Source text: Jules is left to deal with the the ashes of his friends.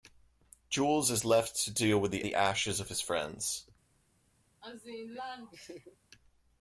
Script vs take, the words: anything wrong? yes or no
no